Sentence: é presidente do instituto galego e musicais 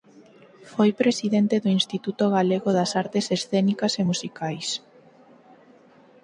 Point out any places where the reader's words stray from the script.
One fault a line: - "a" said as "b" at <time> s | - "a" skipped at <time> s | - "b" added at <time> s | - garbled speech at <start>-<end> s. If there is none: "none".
- "é" said as "foi" at 0.7 s
- "das artes escénicas" added at 2.8 s